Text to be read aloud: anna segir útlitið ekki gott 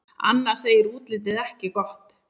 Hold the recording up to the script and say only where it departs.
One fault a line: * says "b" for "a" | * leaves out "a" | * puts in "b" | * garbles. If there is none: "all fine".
all fine